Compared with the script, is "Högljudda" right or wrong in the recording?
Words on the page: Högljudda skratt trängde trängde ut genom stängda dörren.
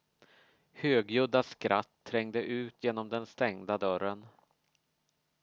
right